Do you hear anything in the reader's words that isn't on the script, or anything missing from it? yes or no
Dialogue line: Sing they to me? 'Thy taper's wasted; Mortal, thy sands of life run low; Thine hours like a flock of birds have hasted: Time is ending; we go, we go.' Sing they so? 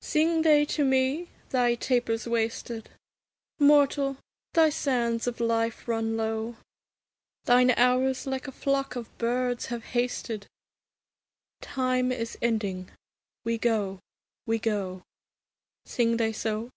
no